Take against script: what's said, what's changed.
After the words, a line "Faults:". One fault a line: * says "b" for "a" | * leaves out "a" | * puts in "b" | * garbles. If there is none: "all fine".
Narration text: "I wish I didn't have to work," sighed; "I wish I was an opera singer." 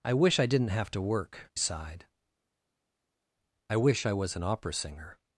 "I wish I didn't have to work," sighed; "I wish I was an opera singer."
Faults:
all fine